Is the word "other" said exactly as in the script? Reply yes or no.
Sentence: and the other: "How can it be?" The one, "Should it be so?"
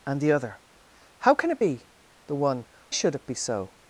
yes